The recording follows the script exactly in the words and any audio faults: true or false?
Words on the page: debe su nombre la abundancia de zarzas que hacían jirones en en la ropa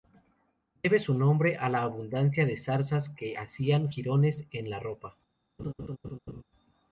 false